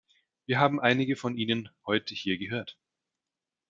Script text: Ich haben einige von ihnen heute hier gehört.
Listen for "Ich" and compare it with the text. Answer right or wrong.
wrong